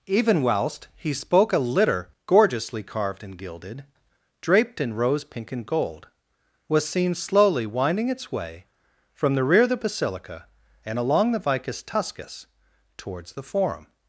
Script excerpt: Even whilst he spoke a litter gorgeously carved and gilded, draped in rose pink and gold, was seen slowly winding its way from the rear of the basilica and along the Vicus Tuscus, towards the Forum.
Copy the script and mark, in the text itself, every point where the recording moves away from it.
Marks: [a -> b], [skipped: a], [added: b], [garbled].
Even whilst he spoke a litter gorgeously carved and gilded, draped in rose pink and gold, was seen slowly winding its way from the rear of the basilica and along the Vicus Tuscus, towards the Forum.